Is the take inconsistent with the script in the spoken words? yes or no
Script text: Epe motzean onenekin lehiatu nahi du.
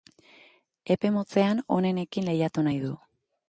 no